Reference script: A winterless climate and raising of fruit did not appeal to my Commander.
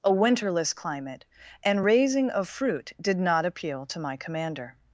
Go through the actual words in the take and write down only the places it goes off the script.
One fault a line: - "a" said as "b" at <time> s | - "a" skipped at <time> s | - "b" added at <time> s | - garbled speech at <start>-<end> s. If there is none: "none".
none